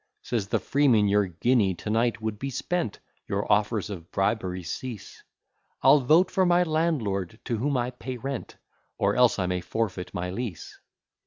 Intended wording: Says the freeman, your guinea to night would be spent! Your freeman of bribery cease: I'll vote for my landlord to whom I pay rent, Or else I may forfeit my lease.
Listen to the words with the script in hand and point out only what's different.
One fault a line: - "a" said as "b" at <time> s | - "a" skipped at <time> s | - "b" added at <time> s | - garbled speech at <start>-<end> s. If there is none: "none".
- "freeman" said as "offers" at 3.5 s